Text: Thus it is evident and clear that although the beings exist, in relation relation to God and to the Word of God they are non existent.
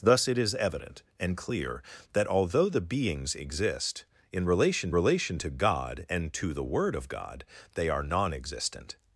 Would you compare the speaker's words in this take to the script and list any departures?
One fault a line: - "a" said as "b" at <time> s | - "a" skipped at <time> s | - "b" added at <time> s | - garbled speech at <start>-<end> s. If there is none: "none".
none